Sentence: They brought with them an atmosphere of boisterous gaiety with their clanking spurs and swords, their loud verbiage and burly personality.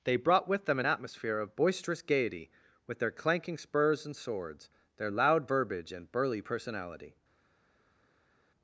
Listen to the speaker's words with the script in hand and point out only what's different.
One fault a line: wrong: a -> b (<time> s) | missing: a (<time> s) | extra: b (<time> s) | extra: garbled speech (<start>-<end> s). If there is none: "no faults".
no faults